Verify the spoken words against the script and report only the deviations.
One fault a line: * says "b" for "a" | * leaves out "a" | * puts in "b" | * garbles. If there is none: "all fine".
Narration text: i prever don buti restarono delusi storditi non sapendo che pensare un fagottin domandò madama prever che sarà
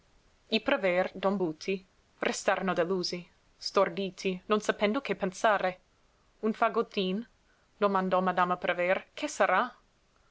all fine